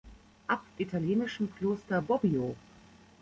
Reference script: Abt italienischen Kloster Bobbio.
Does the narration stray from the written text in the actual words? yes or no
no